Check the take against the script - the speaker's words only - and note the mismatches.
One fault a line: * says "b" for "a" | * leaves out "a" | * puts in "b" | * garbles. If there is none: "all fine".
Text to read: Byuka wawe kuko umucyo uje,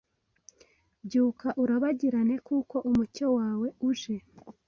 * says "urabagirane" for "wawe"
* puts in "wawe"